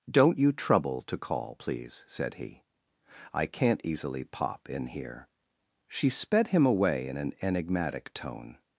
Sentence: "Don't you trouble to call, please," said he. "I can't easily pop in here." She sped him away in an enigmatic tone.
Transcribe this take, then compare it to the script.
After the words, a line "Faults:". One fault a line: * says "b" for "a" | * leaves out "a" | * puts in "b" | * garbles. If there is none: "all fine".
"Don't you trouble to call, please," said he. "I can't easily pop in here." She sped him away in an enigmatic tone.
Faults:
all fine